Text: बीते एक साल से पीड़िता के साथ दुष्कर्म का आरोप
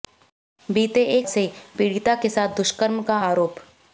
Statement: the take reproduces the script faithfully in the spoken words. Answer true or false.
false